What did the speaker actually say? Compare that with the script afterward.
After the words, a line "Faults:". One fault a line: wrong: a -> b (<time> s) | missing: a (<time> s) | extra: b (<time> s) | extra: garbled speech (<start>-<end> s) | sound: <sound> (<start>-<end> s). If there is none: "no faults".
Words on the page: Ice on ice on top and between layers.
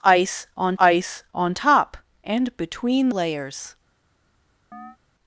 Ice on ice on top and between layers.
Faults:
sound: chirp (4.7-5.0 s)